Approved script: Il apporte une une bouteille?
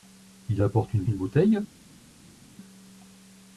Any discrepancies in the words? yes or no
no